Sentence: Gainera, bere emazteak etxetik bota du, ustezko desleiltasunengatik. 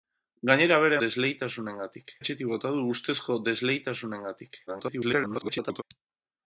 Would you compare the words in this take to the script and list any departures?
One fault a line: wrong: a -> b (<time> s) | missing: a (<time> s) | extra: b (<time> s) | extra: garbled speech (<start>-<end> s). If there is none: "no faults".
wrong: emazteak -> desleiltasunengatik (1.0 s)
extra: garbled speech (4.7-5.8 s)